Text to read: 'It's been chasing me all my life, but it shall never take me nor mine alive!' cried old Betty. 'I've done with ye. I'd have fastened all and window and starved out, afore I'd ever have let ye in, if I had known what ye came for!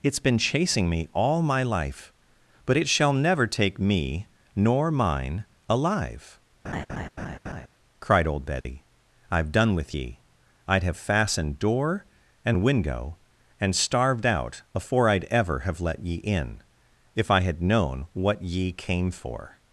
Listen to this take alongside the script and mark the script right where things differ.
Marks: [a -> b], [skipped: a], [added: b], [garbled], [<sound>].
'It's been chasing me all my life, but it shall never take me nor mine alive!' [laugh] cried old Betty. [dropout] 'I've done with ye. I'd have fastened [all -> door] and window and starved out, afore I'd ever have let ye in, if I had known what ye came for!